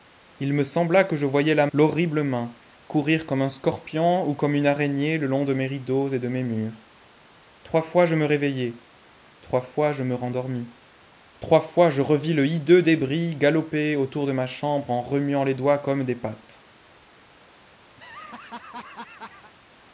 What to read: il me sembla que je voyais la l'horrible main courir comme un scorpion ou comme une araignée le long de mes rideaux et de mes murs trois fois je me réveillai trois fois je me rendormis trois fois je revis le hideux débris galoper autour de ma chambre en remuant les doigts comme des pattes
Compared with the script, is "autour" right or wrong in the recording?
right